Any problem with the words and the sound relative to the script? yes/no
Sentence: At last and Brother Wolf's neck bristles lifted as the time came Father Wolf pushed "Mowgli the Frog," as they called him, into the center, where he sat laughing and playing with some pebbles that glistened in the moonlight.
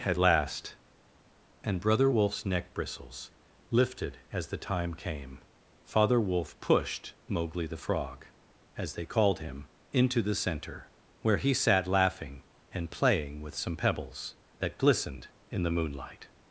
no